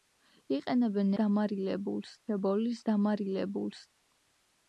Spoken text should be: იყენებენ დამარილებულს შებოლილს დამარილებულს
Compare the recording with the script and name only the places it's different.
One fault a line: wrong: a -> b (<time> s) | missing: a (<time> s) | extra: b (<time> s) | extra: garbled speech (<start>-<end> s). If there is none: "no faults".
no faults